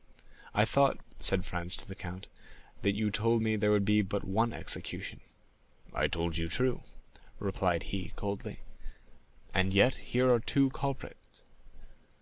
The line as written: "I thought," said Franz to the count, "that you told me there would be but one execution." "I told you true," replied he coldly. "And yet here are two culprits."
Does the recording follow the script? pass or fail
pass